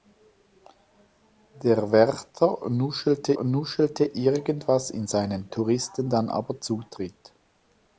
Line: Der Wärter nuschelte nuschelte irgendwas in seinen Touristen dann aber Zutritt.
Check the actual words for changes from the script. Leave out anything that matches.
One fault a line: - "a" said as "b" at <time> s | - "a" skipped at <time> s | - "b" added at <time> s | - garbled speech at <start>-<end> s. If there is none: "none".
none